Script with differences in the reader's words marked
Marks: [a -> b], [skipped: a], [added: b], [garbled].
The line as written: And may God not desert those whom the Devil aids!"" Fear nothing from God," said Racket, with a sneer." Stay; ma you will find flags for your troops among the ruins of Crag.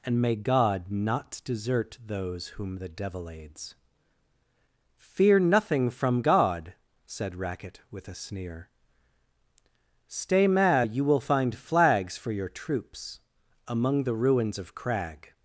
And may God not desert those whom the Devil aids!"" Fear nothing from God," said Racket, with a sneer." Stay; ma you will find flags for your troops among the ruins of Crag.